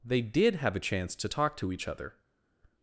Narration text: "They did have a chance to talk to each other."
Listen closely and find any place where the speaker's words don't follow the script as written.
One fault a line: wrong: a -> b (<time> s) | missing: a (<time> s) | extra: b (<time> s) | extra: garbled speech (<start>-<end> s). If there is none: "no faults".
no faults